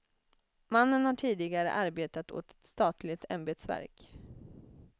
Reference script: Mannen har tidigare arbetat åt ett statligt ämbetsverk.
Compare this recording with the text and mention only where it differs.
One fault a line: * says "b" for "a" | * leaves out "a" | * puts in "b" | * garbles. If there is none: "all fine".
all fine